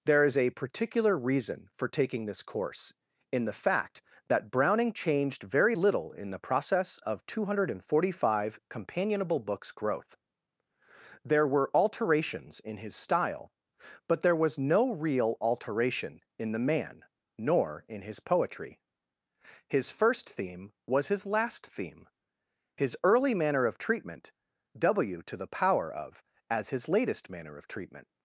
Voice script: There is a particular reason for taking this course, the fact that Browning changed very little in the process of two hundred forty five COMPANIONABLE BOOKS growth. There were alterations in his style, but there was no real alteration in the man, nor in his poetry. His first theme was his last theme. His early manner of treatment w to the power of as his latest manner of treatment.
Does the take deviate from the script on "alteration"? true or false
false